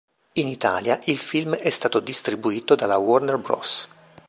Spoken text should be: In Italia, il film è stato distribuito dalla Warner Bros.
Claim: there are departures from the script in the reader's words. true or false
false